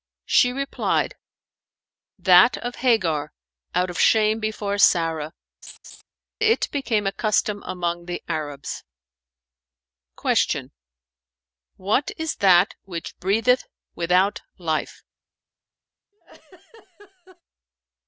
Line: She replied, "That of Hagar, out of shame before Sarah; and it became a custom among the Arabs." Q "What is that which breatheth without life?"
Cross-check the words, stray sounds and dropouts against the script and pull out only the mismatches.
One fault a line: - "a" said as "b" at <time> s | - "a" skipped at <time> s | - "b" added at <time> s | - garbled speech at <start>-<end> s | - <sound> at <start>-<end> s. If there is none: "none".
- "and" skipped at 5.3 s
- laugh at 5.6-6.0 s
- laugh at 16.1-17.4 s